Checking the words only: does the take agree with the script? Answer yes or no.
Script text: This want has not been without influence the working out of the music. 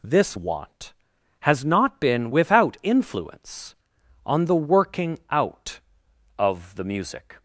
no